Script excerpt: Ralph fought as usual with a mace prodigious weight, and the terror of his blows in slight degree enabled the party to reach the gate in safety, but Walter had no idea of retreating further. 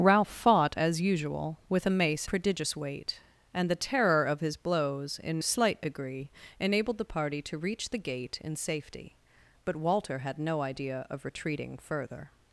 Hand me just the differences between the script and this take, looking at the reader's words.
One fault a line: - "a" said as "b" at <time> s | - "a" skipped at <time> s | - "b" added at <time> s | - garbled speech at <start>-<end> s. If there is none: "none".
none